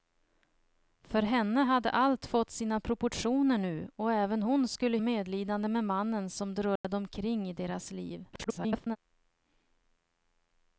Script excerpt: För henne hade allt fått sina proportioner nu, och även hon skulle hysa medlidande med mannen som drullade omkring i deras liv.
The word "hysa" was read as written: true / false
false